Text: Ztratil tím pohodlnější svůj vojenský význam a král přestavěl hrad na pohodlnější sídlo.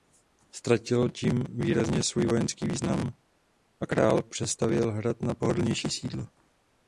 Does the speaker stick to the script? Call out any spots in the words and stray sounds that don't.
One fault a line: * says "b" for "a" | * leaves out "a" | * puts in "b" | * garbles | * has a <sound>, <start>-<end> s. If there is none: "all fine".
* says "výrazně" for "pohodlnější"